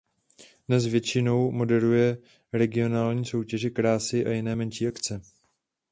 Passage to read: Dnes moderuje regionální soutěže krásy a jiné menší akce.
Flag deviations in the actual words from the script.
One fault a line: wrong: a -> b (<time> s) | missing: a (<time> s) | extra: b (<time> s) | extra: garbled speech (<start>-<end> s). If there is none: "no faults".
extra: většinou (0.8 s)